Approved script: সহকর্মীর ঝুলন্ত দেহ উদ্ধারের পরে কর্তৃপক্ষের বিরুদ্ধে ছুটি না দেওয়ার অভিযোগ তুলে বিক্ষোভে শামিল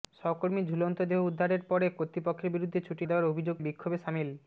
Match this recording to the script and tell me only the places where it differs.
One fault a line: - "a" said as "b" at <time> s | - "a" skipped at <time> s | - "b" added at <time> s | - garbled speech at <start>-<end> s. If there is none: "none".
- "না" skipped at 3.0 s
- "তুলে" skipped at 3.5 s